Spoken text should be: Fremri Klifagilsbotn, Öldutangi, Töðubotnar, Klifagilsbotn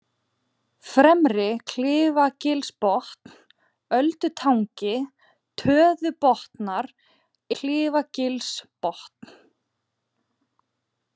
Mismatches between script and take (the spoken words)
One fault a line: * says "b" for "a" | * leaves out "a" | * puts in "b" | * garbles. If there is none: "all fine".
all fine